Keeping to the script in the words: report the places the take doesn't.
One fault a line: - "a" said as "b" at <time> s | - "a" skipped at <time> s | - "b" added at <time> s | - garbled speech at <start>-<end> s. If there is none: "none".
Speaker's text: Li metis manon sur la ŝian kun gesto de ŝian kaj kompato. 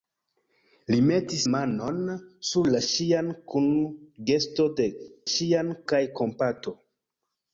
none